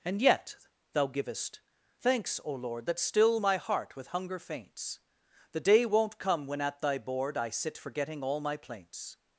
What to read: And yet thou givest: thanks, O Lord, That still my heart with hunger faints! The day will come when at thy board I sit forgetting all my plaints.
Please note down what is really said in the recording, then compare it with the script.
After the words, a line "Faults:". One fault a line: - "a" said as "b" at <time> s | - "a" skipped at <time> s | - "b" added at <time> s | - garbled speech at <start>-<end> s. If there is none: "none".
And yet thou givest: thanks, O Lord, That still my heart with hunger faints! The day won't come when at thy board I sit forgetting all my plaints.
Faults:
- "will" said as "won't" at 5.9 s